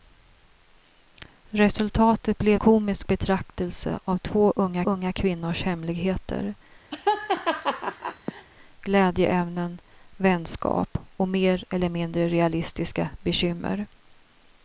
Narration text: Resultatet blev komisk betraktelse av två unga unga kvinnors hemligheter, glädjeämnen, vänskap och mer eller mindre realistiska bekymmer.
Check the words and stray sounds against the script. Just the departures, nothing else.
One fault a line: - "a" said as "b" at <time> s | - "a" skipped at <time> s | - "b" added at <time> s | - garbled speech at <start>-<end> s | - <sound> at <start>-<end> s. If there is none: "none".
- laugh at 6.9-8.5 s